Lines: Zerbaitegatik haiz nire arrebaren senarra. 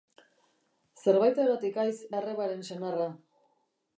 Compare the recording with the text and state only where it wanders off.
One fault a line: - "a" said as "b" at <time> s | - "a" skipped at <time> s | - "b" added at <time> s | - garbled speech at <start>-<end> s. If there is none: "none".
- "nire" skipped at 1.9 s